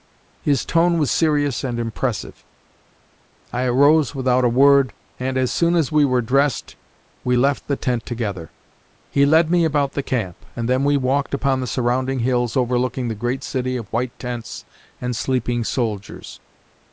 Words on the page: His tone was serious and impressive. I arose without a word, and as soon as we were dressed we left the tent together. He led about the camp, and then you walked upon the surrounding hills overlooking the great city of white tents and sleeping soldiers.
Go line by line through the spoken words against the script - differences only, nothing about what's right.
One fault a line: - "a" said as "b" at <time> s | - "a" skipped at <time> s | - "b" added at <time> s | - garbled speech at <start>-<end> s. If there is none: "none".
- "me" added at 9.5 s
- "you" said as "we" at 10.8 s